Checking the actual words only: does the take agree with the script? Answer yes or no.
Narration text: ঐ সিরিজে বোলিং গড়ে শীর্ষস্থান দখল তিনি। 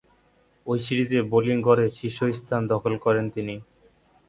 no